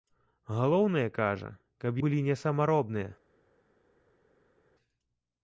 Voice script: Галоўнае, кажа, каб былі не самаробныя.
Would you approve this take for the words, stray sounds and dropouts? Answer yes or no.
yes